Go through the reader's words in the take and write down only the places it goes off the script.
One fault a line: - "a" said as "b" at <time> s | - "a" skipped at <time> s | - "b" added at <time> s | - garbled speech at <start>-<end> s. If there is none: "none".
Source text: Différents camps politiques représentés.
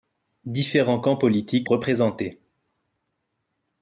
none